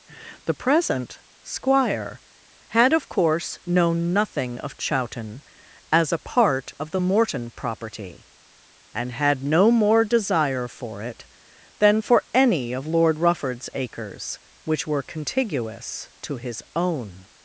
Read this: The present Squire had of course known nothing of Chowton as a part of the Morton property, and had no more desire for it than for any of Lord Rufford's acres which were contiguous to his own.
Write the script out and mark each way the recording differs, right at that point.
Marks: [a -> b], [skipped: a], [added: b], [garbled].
The present Squire had of course known nothing of Chowton as a part of the Morton property, and had no more desire for it than for any of Lord Rufford's acres which were contiguous to his own.